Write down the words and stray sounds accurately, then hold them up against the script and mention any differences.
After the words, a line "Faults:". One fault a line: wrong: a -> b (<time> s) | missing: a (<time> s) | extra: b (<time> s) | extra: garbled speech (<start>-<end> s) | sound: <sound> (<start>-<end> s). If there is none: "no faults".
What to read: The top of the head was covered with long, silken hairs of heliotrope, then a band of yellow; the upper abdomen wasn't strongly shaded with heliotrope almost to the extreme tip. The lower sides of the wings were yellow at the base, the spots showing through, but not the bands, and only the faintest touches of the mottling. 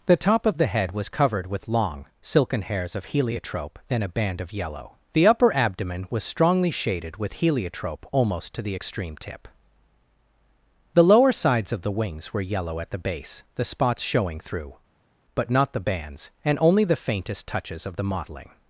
The top of the head was covered with long, silken hairs of heliotrope, then a band of yellow; the upper abdomen was strongly shaded with heliotrope almost to the extreme tip. The lower sides of the wings were yellow at the base, the spots showing through, but not the bands, and only the faintest touches of the mottling.
Faults:
wrong: wasn't -> was (6.1 s)